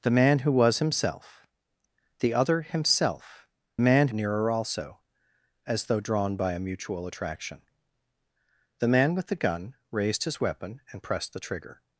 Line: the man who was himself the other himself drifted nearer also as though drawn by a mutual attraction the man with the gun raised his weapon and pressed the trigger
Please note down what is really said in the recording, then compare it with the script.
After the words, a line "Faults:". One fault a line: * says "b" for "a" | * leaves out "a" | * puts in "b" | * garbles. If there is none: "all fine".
the man who was himself the other himself man nearer also as though drawn by a mutual attraction the man with the gun raised his weapon and pressed the trigger
Faults:
* says "man" for "drifted"